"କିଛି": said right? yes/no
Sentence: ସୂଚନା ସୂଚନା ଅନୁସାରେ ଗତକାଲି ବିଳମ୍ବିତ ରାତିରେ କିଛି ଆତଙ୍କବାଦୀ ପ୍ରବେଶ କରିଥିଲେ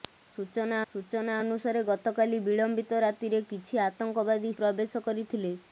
yes